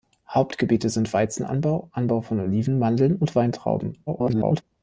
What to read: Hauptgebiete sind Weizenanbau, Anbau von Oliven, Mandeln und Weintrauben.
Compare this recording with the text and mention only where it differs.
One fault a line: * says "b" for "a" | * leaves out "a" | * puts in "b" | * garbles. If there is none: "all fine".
* garbles